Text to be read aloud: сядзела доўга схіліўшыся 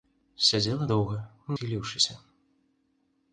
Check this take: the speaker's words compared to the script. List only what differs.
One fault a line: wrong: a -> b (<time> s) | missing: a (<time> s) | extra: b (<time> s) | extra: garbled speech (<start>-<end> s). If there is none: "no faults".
no faults